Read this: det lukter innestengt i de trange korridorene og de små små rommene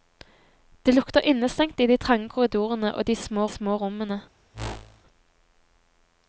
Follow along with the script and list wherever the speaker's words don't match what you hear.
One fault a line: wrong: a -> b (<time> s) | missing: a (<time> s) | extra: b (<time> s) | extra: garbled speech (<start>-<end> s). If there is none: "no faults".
no faults